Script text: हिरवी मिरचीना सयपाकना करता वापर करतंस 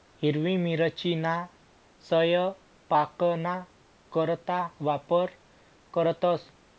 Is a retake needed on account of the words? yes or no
no